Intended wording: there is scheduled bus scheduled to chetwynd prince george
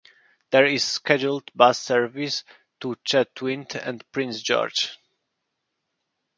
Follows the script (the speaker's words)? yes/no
no